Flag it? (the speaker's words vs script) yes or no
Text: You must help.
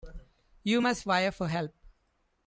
yes